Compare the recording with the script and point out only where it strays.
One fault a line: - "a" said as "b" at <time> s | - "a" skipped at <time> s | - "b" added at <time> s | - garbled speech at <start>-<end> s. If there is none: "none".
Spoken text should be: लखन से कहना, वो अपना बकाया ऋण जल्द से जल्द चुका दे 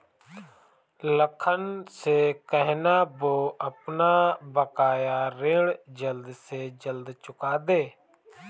none